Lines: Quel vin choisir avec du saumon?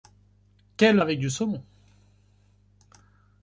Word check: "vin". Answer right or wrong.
wrong